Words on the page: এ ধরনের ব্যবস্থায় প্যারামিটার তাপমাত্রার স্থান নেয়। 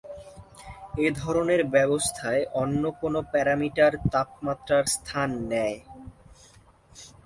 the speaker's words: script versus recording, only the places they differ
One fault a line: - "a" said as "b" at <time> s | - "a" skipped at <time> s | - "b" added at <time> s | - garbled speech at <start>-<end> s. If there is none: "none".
- "অন্য কোনো" added at 2.5 s